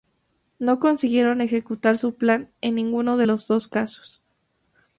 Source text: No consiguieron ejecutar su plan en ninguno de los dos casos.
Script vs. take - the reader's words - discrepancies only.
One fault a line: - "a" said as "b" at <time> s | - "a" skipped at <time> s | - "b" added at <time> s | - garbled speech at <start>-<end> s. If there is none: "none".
none